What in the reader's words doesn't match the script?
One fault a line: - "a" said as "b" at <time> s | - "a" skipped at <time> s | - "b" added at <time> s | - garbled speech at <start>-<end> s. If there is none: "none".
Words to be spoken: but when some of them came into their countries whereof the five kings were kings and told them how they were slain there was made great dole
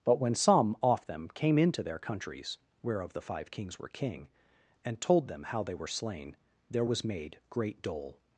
- "of" said as "off" at 0.8 s
- "kings" said as "king" at 3.9 s